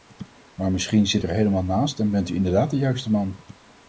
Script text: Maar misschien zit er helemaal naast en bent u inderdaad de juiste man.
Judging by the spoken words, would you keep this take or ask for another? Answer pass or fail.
pass